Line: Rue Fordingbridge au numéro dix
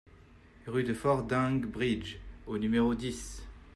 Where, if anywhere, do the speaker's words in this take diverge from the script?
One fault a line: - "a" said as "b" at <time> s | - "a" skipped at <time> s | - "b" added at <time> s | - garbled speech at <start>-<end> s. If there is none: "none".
- "de" added at 0.8 s